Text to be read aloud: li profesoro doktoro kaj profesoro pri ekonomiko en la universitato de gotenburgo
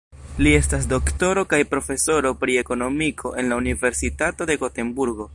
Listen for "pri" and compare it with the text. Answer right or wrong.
right